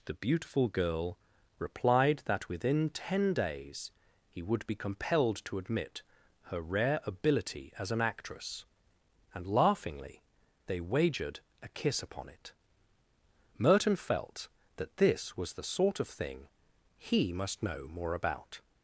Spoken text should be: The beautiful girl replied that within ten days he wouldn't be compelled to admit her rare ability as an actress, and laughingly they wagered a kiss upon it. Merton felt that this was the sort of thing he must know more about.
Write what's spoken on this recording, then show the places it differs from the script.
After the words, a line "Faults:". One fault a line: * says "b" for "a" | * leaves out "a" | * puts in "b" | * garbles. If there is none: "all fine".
The beautiful girl replied that within ten days he would be compelled to admit her rare ability as an actress, and laughingly they wagered a kiss upon it. Merton felt that this was the sort of thing he must know more about.
Faults:
* says "would" for "wouldn't"